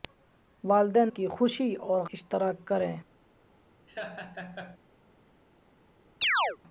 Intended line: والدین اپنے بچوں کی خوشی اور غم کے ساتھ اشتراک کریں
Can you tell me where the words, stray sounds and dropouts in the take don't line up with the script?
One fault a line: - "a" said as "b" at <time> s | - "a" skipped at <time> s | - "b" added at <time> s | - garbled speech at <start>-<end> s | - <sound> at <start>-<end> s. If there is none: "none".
- "اپنے بچوں" skipped at 1.1 s
- "غم کے ساتھ" skipped at 2.0 s
- laugh at 3.9-4.8 s
- chirp at 6.2-6.6 s